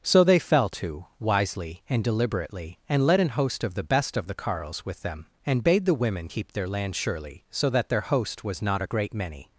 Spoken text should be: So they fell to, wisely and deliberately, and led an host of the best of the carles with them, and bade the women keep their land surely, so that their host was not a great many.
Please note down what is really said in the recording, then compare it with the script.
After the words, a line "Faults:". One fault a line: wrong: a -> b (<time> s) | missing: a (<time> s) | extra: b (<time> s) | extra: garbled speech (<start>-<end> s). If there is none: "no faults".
So they fell to, wisely and deliberately, and led an host of the best of the carles with them, and bade the women keep their land surely, so that their host was not a great many.
Faults:
no faults